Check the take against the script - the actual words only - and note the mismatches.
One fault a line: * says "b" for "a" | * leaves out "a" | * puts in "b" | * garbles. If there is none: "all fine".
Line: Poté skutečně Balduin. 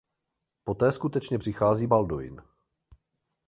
* puts in "přichází"